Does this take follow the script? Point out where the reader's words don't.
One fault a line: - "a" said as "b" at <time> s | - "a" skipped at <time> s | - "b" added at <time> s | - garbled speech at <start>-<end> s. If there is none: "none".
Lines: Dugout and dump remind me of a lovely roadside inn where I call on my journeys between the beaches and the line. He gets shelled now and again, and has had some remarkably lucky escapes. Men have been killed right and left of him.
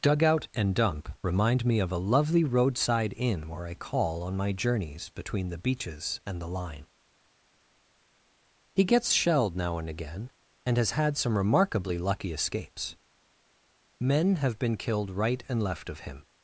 none